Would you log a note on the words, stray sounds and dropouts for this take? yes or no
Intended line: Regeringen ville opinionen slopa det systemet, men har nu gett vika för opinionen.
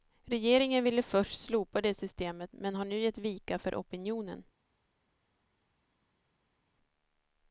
yes